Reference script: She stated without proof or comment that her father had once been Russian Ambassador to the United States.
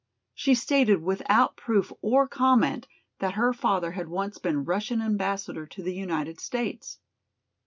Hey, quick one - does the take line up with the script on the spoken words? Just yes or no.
yes